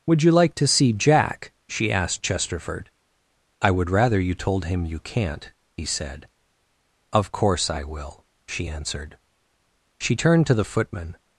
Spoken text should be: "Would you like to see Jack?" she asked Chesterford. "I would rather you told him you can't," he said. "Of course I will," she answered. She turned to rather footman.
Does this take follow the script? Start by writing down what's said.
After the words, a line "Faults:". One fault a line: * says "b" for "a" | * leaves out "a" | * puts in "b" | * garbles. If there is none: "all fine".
"Would you like to see Jack?" she asked Chesterford. "I would rather you told him you can't," he said. "Of course I will," she answered. She turned to the footman.
Faults:
* says "the" for "rather"